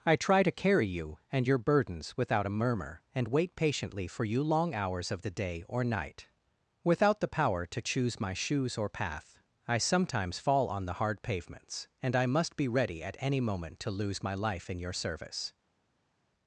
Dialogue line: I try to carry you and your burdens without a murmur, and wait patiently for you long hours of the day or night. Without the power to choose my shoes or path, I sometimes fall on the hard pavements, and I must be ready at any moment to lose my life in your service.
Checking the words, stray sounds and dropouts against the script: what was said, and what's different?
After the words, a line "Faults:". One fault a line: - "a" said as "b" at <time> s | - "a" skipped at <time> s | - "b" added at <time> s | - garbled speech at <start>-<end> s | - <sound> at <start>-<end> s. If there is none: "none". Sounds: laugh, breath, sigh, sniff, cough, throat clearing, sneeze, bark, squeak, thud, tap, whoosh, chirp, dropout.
I try to carry you and your burdens without a murmur, and wait patiently for you long hours of the day or night. Without the power to choose my shoes or path, I sometimes fall on the hard pavements, and I must be ready at any moment to lose my life in your service.
Faults:
none